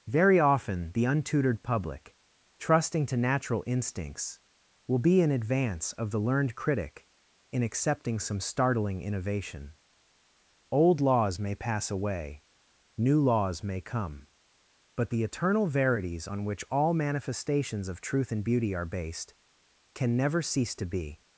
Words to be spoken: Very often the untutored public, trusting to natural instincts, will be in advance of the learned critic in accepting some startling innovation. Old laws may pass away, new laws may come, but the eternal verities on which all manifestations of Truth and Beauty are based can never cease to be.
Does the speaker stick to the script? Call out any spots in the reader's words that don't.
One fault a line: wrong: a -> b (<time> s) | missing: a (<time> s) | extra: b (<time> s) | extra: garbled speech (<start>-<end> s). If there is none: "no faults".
no faults